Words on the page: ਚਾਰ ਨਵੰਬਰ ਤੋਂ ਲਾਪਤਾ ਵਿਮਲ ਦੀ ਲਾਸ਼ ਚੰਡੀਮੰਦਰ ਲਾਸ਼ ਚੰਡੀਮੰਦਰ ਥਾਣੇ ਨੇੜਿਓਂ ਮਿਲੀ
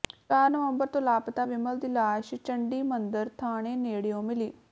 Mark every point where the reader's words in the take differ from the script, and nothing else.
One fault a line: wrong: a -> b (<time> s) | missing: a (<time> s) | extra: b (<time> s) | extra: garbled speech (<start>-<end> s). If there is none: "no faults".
missing: ਲਾਸ਼ ਚੰਡੀਮੰਦਰ (3.3 s)